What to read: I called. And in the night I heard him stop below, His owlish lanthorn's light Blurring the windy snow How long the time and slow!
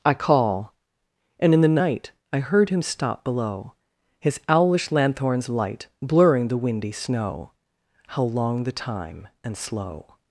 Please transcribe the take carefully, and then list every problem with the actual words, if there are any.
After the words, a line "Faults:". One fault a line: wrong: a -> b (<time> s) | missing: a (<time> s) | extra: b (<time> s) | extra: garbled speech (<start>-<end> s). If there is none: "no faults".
I call. And in the night I heard him stop below, His owlish lanthorn's light Blurring the windy snow How long the time and slow!
Faults:
wrong: called -> call (0.1 s)